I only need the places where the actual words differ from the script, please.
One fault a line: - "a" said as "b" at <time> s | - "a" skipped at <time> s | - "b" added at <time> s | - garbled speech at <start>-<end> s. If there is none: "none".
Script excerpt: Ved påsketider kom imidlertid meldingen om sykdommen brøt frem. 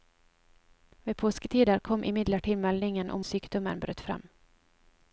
none